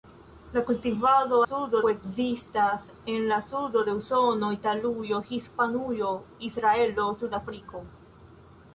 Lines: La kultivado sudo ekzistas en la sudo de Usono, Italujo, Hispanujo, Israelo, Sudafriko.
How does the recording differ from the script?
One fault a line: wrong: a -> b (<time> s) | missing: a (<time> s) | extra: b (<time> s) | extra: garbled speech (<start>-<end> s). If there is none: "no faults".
no faults